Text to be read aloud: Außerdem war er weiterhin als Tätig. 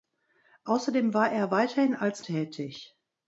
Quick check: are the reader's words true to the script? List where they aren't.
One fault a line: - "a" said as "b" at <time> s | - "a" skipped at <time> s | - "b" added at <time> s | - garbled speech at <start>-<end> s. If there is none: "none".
none